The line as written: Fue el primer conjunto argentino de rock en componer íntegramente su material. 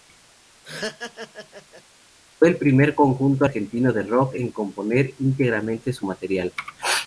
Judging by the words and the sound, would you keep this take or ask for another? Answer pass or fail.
fail